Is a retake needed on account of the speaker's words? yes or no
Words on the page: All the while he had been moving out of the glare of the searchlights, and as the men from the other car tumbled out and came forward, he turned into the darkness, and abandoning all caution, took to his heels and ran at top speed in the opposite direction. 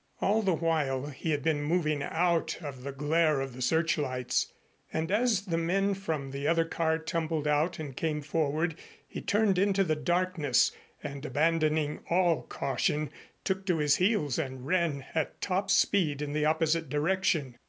no